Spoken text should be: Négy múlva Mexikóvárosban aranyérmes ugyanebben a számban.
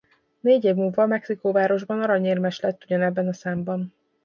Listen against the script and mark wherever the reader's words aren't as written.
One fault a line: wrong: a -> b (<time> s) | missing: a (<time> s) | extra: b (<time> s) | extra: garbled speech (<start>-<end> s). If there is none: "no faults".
extra: év (0.6 s)
extra: lett (2.6 s)